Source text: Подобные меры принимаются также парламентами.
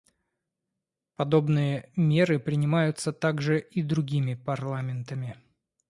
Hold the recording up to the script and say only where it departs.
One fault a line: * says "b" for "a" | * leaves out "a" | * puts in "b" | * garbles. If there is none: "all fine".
* puts in "и другими"